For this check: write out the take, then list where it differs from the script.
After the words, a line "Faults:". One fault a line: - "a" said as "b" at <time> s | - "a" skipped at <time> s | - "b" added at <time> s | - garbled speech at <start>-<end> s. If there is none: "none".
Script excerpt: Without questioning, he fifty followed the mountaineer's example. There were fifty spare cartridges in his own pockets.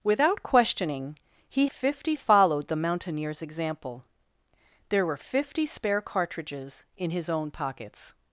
Without questioning, he fifty followed the mountaineer's example. There were fifty spare cartridges in his own pockets.
Faults:
none